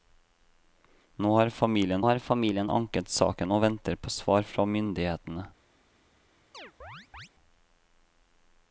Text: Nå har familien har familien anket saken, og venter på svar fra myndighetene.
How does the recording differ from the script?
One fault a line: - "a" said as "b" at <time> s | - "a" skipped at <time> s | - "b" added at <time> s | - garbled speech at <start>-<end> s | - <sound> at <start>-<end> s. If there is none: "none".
- chirp at 6.5-7.3 s